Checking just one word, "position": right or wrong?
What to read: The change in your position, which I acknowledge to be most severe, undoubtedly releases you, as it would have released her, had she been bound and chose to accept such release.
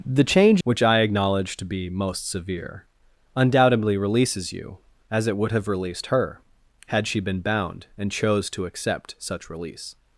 wrong